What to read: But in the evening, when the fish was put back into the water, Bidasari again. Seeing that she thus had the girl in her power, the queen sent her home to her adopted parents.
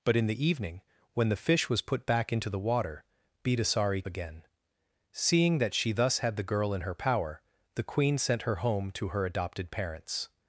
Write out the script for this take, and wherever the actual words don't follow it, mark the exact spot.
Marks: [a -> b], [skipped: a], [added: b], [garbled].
But in the evening, when the fish was put back into the water, Bidasari again. Seeing that she thus had the girl in her power, the queen sent her home to her adopted parents.